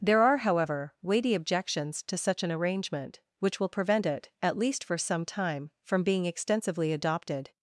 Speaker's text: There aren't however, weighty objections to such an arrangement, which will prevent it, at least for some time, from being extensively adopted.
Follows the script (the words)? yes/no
no